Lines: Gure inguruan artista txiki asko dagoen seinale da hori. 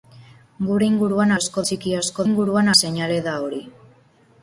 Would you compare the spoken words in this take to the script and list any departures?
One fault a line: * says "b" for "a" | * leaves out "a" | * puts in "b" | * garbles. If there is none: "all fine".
* says "asko" for "artista"
* says "inguruan" for "dagoen"